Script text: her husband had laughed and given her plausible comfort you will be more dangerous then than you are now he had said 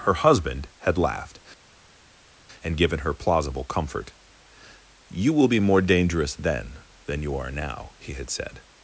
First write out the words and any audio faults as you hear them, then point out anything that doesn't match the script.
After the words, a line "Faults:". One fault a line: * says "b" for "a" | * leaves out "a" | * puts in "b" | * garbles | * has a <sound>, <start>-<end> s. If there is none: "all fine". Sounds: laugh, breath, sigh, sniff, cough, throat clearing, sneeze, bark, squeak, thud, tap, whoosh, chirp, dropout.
her husband had laughed and given her plausible comfort you will be more dangerous then than you are now he had said
Faults:
all fine